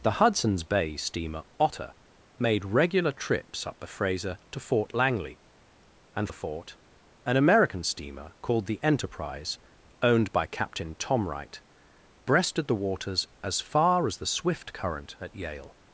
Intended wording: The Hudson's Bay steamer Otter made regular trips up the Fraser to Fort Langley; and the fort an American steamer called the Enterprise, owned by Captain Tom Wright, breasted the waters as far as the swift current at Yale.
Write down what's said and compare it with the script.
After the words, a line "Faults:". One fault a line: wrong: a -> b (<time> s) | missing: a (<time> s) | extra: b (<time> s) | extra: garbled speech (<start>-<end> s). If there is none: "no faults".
The Hudson's Bay steamer Otter made regular trips up the Fraser to Fort Langley; and the fort an American steamer called the Enterprise, owned by Captain Tom Wright, breasted the waters as far as the swift current at Yale.
Faults:
no faults